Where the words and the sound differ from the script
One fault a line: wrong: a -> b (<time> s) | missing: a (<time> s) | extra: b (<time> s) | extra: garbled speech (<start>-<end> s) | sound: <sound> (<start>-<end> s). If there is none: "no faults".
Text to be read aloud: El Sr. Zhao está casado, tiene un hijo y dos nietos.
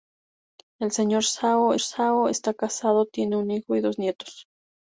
extra: zhao (1.8 s)